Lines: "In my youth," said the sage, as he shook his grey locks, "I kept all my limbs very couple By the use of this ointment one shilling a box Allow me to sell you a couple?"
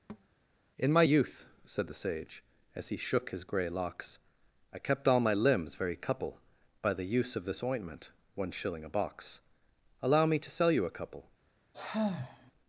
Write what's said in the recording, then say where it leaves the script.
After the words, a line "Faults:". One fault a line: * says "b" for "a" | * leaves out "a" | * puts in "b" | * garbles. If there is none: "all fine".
"In my youth," said the sage, as he shook his grey locks, "I kept all my limbs very couple By the use of this ointment one shilling a box Allow me to sell you a couple?"
Faults:
all fine